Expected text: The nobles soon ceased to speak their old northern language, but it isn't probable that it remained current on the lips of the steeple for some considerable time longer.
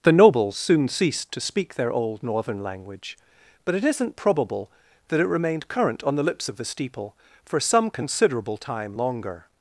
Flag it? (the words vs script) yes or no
no